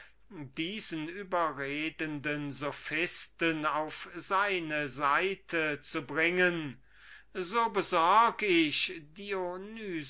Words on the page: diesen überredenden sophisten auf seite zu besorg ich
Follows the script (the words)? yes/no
no